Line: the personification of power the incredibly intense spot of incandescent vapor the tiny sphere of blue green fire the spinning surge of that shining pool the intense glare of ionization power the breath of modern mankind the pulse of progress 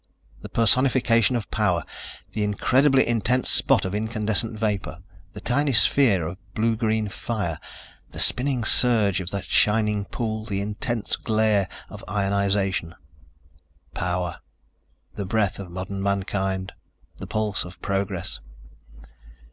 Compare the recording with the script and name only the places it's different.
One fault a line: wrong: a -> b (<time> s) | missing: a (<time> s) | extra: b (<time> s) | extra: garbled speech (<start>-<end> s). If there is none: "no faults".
no faults